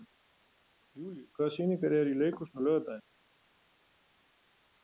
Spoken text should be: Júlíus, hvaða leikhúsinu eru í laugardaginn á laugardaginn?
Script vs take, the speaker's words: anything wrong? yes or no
yes